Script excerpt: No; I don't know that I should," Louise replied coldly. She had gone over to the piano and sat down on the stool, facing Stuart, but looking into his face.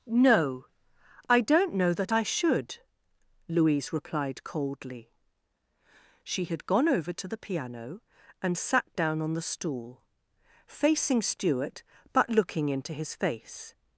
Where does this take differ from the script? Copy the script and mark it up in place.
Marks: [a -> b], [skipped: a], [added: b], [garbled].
No; I don't know that I should," Louise replied coldly. She had gone over to the piano and sat down on the stool, facing Stuart, but looking into his face.